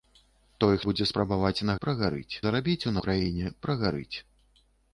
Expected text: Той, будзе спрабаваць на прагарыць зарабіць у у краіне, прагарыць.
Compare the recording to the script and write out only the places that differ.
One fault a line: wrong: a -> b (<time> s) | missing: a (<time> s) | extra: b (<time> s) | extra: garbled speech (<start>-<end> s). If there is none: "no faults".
no faults